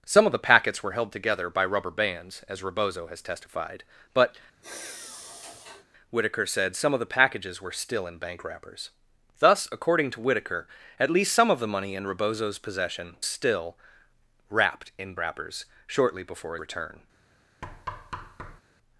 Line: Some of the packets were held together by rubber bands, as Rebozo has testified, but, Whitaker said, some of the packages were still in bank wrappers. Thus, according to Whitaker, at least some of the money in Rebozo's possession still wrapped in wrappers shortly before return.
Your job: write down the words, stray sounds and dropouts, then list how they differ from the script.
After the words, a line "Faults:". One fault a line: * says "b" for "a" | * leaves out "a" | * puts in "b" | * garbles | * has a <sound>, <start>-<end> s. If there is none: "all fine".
Some of the packets were held together by rubber bands, as Rebozo has testified, but, Whitaker said, some of the packages were still in bank wrappers. Thus, according to Whitaker, at least some of the money in Rebozo's possession still wrapped in wrappers shortly before return.
Faults:
* has a sigh, 4.6-5.9 s
* has a thud, 17.6-18.6 s